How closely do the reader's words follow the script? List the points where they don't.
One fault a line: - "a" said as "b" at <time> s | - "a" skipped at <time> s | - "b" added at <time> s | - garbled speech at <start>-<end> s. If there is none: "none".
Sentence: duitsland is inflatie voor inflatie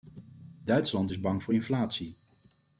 - "inflatie" said as "bang" at 1.2 s